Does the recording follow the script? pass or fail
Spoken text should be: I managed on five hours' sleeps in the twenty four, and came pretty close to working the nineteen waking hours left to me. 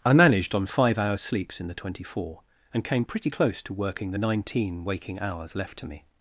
pass